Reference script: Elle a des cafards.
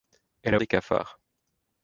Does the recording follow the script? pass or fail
pass